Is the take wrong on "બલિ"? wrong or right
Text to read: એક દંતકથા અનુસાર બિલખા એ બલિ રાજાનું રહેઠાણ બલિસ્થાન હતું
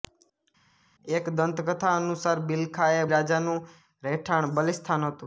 wrong